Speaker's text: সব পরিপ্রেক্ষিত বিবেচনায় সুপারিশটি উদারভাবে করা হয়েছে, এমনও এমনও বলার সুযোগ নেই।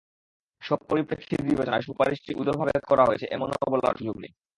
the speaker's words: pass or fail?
fail